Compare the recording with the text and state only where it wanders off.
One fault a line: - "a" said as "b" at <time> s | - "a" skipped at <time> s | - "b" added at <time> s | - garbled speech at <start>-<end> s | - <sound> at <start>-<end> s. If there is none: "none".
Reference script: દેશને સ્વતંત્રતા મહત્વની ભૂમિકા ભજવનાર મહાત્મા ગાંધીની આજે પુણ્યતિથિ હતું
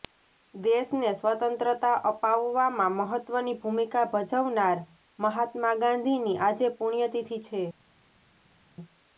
- "અપાવવામાં" added at 2.1 s
- "હતું" said as "છે" at 7.5 s